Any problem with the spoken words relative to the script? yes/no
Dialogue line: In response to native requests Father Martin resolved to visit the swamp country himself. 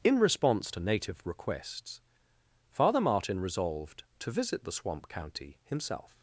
yes